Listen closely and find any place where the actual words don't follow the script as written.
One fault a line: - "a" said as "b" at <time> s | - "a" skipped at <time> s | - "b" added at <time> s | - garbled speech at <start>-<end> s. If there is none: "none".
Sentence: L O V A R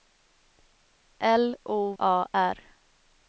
- "V" skipped at 1.9 s